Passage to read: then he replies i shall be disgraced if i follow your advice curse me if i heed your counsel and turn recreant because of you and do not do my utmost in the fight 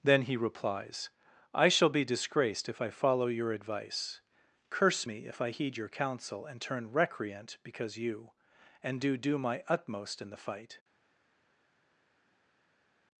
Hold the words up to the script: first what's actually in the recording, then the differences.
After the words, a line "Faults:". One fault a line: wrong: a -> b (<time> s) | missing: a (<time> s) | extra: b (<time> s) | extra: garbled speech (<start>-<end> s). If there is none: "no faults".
then he replies i shall be disgraced if i follow your advice curse me if i heed your counsel and turn recreant because you and do do my utmost in the fight
Faults:
missing: of (8.0 s)
missing: not (9.2 s)